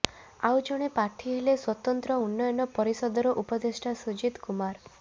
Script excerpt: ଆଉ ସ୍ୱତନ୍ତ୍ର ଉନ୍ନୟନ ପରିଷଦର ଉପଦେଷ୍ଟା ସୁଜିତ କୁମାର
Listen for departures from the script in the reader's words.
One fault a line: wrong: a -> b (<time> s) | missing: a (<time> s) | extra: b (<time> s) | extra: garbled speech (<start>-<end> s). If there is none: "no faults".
extra: ଜଣେ ପ୍ରାର୍ଥୀ ହେଲେ (0.7 s)